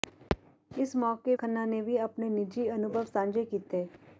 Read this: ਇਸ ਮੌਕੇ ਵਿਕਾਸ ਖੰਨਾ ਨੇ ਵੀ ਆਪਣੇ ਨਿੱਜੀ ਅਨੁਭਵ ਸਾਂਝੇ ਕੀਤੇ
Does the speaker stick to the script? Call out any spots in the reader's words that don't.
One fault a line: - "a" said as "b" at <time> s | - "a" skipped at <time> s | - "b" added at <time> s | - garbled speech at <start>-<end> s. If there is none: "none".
- "ਵਿਕਾਸ" skipped at 1.4 s